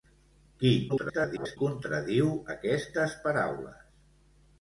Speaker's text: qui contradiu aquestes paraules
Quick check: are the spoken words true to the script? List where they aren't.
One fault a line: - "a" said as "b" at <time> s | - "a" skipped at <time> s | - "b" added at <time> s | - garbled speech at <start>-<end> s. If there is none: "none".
- garbled speech at 0.9-1.6 s